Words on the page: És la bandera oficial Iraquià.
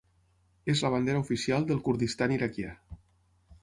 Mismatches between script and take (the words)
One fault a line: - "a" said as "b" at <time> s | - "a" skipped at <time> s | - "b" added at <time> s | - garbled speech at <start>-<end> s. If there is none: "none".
- "del Kurdistan" added at 1.7 s